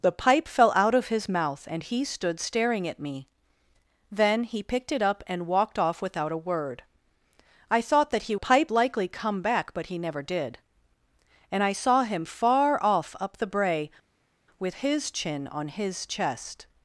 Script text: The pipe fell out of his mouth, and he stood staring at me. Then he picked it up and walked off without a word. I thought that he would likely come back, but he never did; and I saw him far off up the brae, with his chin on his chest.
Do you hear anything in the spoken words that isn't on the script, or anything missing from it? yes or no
yes